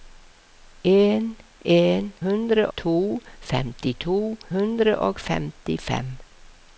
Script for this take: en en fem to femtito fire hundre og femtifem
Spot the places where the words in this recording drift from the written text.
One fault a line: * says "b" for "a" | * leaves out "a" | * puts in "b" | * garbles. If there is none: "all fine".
* says "hundre" for "fem"
* leaves out "fire"